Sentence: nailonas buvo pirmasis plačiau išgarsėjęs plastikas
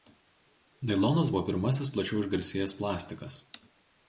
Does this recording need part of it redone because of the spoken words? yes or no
no